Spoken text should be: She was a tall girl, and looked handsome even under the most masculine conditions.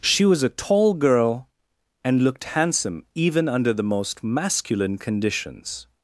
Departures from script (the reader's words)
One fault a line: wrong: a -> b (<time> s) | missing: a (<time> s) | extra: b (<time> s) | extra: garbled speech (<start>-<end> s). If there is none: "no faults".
no faults